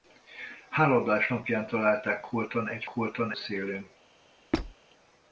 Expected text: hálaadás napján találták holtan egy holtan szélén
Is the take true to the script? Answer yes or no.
yes